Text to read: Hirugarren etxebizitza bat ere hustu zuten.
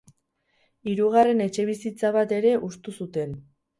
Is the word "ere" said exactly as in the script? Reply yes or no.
yes